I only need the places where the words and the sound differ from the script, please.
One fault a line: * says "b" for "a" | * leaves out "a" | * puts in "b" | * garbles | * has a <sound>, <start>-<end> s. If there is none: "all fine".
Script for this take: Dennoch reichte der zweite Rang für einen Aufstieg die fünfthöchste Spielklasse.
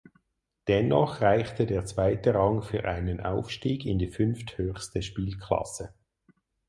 * puts in "in"